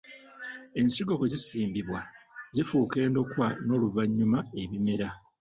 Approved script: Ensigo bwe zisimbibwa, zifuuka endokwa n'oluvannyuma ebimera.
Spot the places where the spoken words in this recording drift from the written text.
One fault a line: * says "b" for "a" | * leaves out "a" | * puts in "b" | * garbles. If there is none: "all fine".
all fine